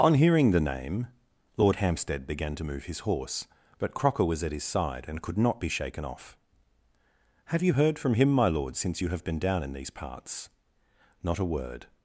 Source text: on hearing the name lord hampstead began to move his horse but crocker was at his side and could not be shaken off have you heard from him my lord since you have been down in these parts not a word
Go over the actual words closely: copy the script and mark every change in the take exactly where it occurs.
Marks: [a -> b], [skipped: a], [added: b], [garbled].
on hearing the name lord hampstead began to move his horse but crocker was at his side and could not be shaken off have you heard from him my lord since you have been down in these parts not a word